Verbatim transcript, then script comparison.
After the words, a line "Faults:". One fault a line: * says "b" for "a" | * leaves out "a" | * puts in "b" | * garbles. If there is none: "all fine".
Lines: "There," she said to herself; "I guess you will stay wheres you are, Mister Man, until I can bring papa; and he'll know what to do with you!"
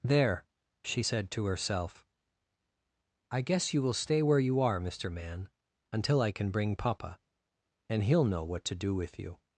"There," she said to herself; "I guess you will stay where you are, Mister Man, until I can bring papa; and he'll know what to do with you!"
Faults:
* says "where" for "wheres"